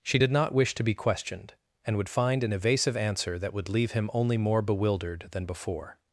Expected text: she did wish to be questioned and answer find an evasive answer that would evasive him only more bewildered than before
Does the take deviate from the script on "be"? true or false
false